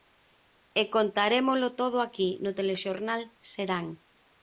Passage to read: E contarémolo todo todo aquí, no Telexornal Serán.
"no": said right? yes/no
yes